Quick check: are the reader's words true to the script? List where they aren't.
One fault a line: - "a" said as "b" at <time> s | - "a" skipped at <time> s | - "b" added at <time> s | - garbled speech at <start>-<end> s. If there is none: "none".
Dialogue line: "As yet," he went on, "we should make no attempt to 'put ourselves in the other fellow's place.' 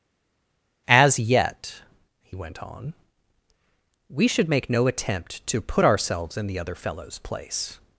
none